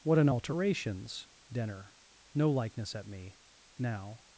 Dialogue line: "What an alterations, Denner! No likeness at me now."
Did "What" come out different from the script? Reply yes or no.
no